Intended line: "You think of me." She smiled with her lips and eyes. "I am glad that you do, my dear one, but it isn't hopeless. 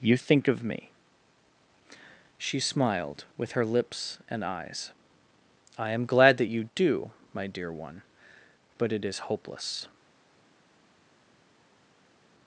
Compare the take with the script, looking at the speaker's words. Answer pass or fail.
fail